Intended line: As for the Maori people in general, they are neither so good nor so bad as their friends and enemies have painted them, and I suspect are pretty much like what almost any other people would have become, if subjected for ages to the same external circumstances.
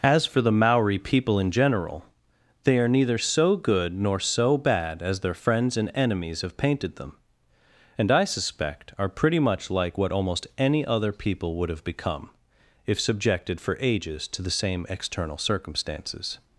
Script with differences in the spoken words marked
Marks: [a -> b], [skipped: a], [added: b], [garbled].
As for the Maori people in general, they are neither so good nor so bad as their friends and enemies have painted them, and I suspect are pretty much like what almost any other people would have become, if subjected for ages to the same external circumstances.